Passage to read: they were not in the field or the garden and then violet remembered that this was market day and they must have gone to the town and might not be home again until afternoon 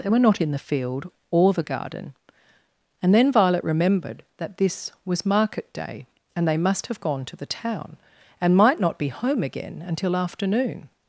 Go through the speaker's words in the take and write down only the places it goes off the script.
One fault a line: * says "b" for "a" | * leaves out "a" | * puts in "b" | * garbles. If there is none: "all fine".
all fine